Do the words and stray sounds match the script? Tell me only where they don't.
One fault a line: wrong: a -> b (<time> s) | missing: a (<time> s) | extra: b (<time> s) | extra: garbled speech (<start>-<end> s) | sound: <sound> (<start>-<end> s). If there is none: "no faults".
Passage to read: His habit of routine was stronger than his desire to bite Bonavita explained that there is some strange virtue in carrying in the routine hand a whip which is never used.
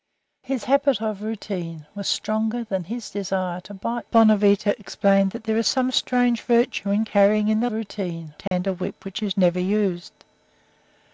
sound: dropout (8.5-8.5 s)